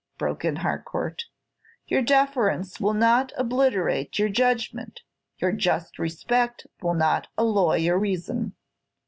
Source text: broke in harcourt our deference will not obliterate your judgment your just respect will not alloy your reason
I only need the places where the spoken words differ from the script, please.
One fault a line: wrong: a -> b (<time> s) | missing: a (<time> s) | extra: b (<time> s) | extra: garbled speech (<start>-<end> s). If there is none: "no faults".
wrong: our -> your (1.9 s)